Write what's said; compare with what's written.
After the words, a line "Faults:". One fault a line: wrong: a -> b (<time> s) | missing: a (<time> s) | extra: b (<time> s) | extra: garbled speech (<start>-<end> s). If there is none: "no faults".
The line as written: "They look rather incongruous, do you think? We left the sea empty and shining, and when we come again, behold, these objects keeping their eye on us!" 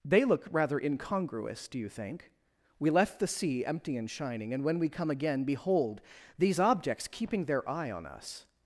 "They look rather incongruous, do you think? We left the sea empty and shining, and when we come again, behold, these objects keeping their eye on us!"
Faults:
no faults